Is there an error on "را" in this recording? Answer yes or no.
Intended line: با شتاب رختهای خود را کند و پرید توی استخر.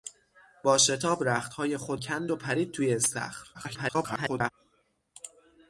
yes